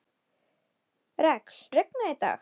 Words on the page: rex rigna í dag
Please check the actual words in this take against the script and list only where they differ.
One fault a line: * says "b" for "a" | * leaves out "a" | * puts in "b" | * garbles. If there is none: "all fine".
all fine